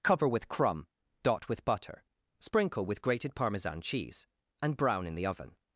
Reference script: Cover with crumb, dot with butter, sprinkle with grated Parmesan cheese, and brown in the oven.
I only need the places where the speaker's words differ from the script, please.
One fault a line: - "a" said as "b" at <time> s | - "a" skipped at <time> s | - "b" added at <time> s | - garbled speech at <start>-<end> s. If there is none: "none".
none